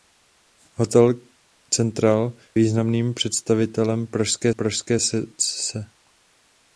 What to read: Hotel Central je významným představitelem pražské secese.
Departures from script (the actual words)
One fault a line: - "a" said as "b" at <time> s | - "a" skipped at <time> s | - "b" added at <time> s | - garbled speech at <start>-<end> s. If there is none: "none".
- "je" skipped at 2.3 s
- "pražské" added at 4.5 s